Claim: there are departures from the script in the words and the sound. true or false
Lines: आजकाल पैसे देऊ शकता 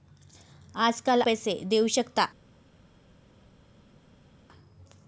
false